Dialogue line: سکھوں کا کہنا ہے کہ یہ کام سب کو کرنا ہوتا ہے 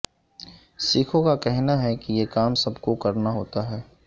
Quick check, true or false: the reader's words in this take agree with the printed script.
true